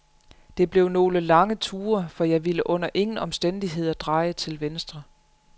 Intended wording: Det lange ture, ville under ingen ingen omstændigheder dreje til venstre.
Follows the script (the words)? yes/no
no